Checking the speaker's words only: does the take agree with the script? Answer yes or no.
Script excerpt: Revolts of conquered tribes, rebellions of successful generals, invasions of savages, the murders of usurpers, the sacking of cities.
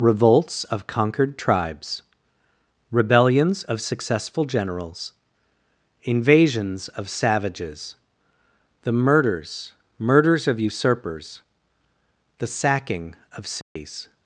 no